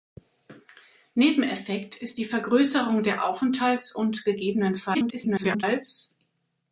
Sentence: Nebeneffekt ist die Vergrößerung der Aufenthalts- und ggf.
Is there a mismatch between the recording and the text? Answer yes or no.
yes